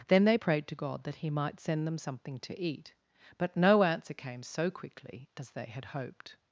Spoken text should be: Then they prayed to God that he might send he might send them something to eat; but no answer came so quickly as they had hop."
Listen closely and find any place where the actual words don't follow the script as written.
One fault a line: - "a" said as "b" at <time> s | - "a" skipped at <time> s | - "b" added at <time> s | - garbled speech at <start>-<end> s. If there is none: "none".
- "he might send" skipped at 1.9 s
- "hop" said as "hoped" at 5.9 s